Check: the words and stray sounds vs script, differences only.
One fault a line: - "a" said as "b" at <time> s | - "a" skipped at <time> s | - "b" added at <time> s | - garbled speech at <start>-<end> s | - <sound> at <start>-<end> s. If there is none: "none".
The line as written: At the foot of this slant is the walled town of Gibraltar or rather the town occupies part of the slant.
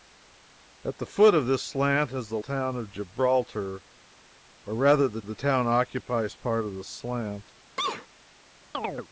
- "walled" skipped at 2.4 s
- "the" added at 5.2 s
- sneeze at 7.8-8.1 s
- chirp at 8.7-9.1 s